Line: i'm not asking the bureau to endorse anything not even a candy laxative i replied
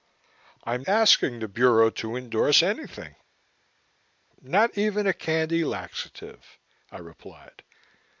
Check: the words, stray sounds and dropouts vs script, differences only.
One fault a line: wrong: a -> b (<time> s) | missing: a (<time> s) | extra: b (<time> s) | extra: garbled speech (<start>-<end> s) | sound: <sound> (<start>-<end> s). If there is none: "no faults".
missing: not (0.8 s)